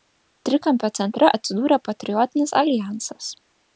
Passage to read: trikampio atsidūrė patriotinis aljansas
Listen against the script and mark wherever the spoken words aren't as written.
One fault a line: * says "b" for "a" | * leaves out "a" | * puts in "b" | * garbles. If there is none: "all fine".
* puts in "centre"